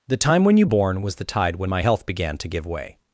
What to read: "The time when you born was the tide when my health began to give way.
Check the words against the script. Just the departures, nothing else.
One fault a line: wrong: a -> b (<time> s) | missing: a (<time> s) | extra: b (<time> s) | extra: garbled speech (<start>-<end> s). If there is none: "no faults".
no faults